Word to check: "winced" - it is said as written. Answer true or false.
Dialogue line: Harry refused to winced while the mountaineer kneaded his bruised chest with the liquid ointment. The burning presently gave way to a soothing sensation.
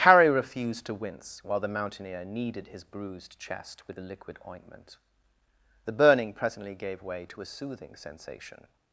false